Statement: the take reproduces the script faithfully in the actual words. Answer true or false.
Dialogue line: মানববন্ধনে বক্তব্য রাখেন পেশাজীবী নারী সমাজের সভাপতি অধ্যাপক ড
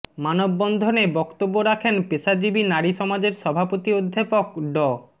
true